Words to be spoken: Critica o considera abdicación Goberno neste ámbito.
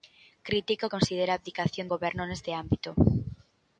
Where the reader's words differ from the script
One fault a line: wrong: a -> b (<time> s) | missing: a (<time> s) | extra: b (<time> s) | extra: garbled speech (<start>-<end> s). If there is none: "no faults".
no faults